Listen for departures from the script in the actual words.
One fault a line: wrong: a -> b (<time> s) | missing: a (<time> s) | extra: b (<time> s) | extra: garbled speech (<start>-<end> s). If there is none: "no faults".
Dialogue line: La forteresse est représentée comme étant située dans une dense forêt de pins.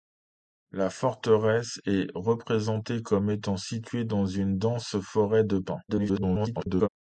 extra: garbled speech (5.9-6.9 s)